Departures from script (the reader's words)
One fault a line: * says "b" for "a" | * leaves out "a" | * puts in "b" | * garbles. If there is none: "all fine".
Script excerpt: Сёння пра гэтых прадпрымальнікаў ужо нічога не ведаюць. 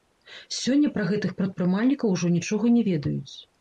all fine